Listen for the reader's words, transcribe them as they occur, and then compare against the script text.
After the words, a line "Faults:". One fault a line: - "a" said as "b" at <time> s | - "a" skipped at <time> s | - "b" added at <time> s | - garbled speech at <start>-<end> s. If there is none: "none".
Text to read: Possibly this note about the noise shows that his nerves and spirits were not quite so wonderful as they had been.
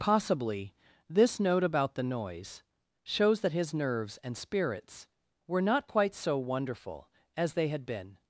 Possibly this note about the noise shows that his nerves and spirits were not quite so wonderful as they had been.
Faults:
none